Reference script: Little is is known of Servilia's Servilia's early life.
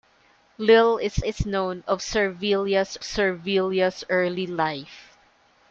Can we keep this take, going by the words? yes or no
yes